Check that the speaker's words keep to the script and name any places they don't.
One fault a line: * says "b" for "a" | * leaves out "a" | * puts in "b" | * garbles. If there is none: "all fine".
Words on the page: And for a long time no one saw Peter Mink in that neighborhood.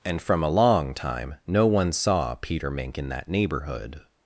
* says "from" for "for"